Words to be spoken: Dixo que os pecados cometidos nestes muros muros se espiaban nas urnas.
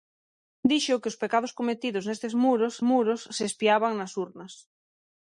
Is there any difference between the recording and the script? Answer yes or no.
no